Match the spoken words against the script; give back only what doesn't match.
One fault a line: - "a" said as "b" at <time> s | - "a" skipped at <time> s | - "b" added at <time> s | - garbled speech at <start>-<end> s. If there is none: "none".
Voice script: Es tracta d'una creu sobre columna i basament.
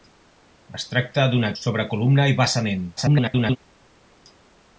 - "creu" skipped at 1.5 s
- garbled speech at 3.0-3.6 s